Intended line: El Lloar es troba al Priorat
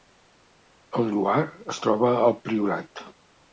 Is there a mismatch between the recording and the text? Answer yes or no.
no